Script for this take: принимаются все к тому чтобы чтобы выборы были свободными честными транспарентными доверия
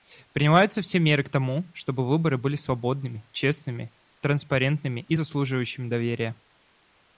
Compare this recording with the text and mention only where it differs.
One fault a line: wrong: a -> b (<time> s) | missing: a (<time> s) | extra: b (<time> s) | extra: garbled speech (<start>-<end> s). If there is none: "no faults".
extra: меры (1.0 s)
missing: чтобы (2.1 s)
extra: и заслуживающими (5.0 s)